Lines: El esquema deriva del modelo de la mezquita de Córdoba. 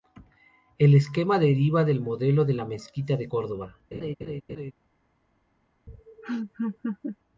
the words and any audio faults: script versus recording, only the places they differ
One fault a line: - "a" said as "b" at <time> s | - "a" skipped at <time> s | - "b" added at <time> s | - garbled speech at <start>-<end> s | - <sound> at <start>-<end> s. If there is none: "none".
- laugh at 3.9-4.7 s
- laugh at 5.9-7.2 s